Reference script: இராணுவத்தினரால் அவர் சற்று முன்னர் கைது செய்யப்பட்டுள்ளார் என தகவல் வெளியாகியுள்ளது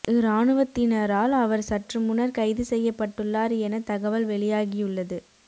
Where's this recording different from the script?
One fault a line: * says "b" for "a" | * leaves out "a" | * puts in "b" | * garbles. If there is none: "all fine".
all fine